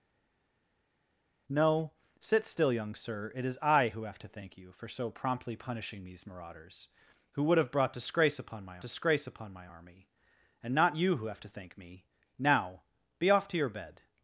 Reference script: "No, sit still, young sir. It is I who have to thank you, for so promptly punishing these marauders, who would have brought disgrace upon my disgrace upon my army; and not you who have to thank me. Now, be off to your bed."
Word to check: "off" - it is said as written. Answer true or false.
true